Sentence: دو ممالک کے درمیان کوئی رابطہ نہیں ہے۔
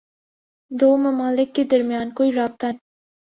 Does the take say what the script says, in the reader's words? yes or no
no